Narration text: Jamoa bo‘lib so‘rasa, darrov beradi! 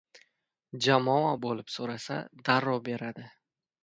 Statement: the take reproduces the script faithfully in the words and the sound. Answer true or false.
true